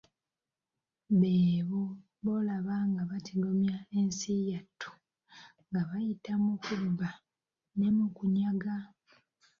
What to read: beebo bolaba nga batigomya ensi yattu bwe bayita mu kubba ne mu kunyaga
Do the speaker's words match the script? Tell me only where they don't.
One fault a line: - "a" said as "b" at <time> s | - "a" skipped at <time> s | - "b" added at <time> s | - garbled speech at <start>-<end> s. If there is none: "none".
- "bwe" said as "nga" at 5.7 s